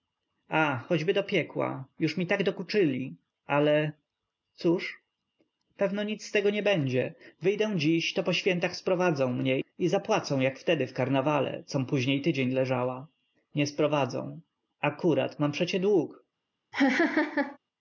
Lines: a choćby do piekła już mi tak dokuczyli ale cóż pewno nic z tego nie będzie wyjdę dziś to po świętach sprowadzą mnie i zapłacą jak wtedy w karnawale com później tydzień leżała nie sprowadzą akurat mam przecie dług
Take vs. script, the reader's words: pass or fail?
pass